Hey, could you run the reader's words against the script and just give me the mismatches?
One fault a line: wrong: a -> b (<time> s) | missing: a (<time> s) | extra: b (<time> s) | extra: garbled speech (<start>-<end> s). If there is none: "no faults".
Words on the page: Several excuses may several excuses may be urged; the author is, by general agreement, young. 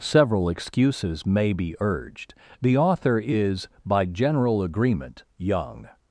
missing: several excuses may (1.5 s)